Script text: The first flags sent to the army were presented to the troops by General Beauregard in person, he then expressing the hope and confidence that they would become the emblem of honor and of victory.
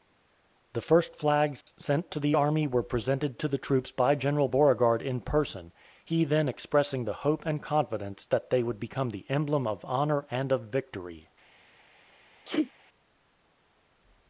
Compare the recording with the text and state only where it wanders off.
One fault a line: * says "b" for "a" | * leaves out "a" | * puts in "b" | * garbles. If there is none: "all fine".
all fine